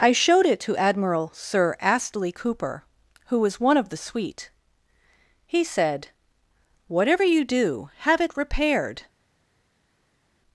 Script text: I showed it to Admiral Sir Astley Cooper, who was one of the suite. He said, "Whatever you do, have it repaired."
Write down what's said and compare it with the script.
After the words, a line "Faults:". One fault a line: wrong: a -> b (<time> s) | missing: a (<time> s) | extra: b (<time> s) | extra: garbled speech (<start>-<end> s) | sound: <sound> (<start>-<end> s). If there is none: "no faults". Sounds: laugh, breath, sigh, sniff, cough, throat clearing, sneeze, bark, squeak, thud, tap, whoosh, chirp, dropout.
I showed it to Admiral Sir Astley Cooper, who was one of the suite. He said, "Whatever you do, have it repaired."
Faults:
no faults